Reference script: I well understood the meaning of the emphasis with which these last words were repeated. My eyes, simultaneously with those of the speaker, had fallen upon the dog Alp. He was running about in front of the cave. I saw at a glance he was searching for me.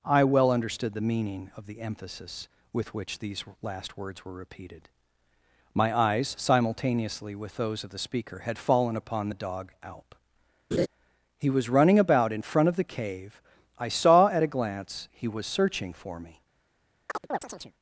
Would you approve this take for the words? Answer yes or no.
yes